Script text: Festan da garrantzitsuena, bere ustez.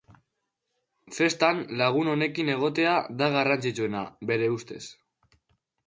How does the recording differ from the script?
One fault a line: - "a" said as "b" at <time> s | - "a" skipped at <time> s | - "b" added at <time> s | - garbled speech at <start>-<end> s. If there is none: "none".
- "lagun onekin egotea" added at 1.8 s